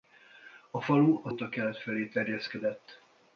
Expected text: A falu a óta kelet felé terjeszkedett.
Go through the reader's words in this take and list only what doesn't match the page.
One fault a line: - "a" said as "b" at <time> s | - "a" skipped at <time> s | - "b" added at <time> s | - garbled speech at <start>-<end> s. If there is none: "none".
none